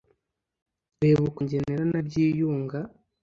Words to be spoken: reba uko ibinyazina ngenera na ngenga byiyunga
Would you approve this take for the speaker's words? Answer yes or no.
no